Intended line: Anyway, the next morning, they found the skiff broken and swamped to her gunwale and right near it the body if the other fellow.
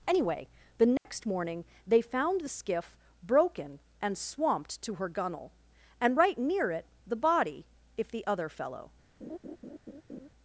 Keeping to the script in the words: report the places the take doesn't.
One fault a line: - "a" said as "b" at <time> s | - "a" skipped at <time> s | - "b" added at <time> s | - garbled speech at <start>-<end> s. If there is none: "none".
none